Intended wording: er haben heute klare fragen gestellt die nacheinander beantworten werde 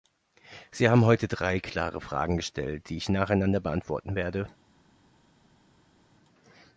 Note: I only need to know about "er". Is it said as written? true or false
false